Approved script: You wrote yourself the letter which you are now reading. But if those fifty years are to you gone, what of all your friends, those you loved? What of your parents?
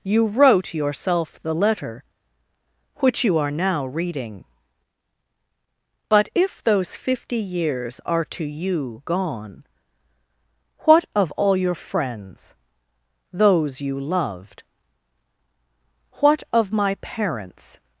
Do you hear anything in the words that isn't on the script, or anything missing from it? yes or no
yes